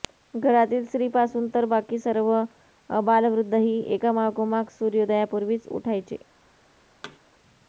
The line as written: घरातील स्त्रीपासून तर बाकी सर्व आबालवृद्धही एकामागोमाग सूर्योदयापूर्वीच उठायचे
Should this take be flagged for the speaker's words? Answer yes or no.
no